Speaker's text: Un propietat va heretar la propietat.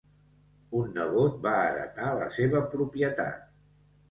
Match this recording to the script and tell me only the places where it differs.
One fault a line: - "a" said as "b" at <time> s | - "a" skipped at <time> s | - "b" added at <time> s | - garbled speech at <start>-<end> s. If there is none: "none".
- "propietat" said as "nebot" at 0.9 s
- "seva" added at 2.4 s